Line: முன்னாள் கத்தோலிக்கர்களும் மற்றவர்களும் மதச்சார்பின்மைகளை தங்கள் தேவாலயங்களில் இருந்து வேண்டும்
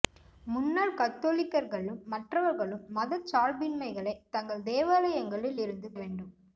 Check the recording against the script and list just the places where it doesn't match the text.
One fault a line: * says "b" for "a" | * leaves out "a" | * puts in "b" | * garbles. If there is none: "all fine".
all fine